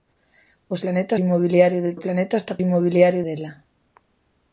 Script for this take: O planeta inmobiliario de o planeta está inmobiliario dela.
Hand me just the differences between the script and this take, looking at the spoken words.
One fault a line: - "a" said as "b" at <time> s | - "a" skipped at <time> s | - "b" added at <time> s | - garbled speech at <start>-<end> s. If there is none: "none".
none